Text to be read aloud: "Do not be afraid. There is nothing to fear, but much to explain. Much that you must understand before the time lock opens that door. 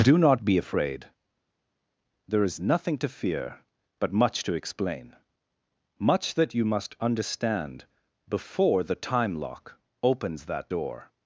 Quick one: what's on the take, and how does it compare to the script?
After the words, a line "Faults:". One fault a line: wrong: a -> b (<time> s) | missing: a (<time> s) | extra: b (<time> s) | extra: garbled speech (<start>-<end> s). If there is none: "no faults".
"Do not be afraid. There is nothing to fear, but much to explain. Much that you must understand before the time lock opens that door.
Faults:
no faults